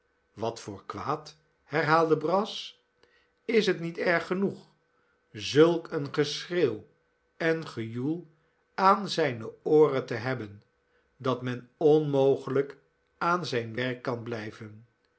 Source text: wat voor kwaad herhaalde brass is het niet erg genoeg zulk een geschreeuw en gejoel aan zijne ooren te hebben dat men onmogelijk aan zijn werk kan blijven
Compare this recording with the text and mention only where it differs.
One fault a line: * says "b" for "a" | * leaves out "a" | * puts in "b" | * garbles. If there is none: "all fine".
all fine